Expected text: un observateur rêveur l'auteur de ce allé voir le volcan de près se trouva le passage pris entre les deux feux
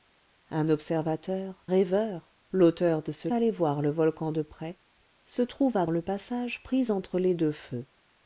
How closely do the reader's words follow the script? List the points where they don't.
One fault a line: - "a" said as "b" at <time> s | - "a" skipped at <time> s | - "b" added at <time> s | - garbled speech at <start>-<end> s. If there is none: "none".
none